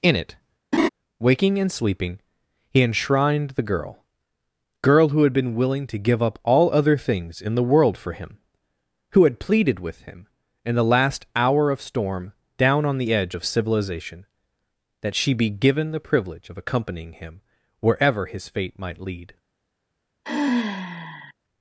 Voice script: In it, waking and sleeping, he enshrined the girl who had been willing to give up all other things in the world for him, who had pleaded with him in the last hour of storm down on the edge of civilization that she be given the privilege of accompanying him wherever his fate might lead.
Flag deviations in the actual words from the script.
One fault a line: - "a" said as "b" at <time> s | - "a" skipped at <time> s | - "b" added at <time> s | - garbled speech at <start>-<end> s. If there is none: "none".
- "girl" added at 4.8 s